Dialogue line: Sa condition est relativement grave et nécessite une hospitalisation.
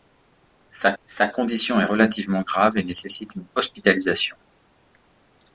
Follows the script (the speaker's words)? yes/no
no